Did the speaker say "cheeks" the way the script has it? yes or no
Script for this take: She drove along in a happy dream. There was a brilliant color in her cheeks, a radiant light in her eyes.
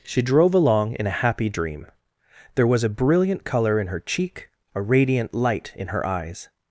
no